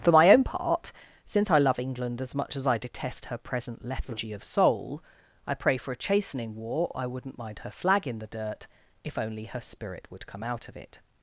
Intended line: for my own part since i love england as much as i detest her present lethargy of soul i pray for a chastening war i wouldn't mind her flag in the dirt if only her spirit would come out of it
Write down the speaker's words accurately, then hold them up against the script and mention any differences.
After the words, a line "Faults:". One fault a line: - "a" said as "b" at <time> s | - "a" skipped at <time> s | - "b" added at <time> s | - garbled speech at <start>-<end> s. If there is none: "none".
for my own part since i love england as much as i detest her present lethargy of soul i pray for a chastening war i wouldn't mind her flag in the dirt if only her spirit would come out of it
Faults:
none